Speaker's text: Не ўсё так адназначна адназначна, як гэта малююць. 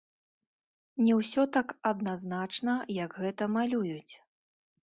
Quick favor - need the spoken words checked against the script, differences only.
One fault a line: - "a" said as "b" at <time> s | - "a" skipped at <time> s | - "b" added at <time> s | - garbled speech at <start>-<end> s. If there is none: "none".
- "адназначна" skipped at 2.7 s